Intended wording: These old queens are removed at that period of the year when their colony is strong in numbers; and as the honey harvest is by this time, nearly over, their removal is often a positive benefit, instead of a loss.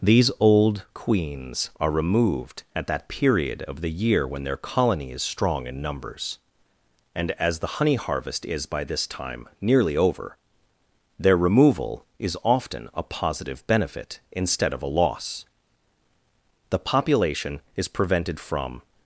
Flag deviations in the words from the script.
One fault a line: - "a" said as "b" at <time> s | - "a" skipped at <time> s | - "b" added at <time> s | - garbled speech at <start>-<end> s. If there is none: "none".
- "The population is prevented from" added at 16.7 s